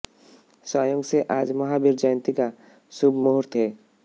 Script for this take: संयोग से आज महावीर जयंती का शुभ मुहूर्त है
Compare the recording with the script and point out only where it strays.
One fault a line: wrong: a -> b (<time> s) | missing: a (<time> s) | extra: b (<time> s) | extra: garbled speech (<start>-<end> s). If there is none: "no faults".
no faults